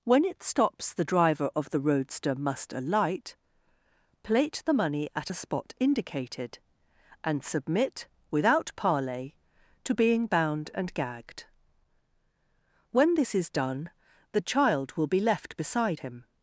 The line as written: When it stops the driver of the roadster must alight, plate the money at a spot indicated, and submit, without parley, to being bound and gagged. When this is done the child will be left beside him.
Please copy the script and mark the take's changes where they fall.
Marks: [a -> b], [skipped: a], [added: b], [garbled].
When it stops the driver of the roadster must alight, plate the money at a spot indicated, and submit, without parley, to being bound and gagged. When this is done the child will be left beside him.